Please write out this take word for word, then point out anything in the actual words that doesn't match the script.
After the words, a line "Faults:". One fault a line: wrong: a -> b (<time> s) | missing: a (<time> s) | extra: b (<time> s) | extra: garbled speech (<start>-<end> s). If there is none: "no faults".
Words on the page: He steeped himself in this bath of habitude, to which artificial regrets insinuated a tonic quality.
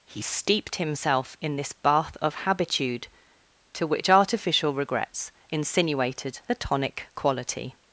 He steeped himself in this bath of habitude, to which artificial regrets insinuated a tonic quality.
Faults:
no faults